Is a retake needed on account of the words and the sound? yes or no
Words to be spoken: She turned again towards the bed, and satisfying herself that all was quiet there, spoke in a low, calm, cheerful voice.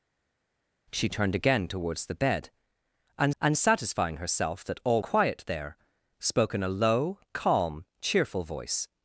yes